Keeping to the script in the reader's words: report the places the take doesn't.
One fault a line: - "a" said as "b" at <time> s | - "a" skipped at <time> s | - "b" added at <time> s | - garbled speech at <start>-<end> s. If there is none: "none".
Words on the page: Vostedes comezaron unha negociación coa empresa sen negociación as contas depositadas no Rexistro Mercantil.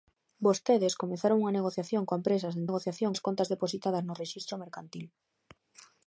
none